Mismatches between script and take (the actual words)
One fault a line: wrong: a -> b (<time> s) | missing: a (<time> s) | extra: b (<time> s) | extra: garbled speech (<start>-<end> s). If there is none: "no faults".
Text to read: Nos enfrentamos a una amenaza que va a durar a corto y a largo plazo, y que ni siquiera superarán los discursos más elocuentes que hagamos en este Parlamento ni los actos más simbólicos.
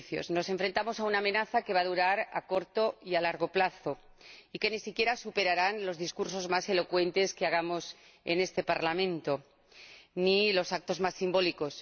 no faults